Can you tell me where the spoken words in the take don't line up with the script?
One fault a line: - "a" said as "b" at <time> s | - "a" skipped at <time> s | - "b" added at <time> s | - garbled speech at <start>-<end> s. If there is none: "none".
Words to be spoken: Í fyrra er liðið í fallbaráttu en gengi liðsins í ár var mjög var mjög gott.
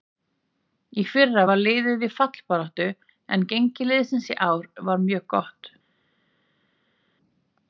- "er" said as "var" at 1.5 s
- "var mjög" skipped at 5.3 s